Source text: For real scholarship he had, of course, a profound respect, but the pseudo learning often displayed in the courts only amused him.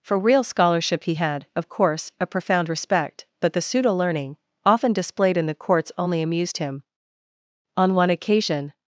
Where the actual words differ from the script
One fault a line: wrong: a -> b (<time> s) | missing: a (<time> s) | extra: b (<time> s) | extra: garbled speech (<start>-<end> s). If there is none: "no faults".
extra: On one occasion (7.8 s)